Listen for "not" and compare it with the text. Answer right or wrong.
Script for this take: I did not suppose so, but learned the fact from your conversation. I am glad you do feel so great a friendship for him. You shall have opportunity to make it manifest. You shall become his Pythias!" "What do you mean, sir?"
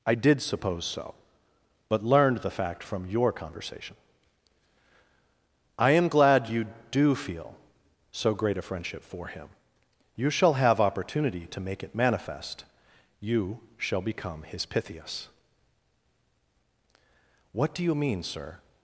wrong